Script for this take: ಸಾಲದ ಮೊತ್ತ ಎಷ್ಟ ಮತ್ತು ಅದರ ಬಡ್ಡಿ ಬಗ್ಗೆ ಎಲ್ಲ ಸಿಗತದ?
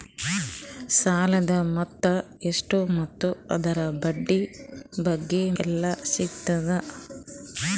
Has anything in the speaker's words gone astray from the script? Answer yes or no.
no